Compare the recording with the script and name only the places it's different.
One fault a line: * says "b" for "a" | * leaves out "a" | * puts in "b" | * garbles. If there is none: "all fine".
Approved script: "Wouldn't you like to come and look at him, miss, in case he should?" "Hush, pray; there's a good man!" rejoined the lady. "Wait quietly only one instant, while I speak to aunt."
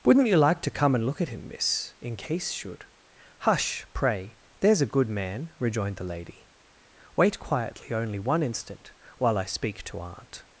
* leaves out "he"